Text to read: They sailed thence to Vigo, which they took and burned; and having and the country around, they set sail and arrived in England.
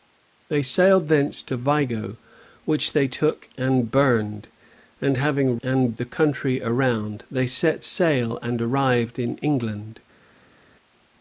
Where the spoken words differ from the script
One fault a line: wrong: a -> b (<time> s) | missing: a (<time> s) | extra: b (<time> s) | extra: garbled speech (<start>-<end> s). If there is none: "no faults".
no faults